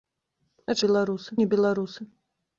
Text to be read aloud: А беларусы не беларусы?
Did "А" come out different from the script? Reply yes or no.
no